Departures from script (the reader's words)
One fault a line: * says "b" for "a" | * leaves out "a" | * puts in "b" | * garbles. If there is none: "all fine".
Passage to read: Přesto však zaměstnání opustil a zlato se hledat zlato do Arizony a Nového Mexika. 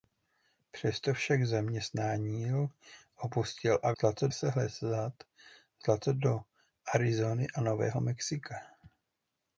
all fine